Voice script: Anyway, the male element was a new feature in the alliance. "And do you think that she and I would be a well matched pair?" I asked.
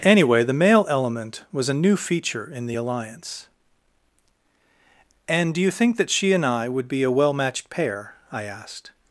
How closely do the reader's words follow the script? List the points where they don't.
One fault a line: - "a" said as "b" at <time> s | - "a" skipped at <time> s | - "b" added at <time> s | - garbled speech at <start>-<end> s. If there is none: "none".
none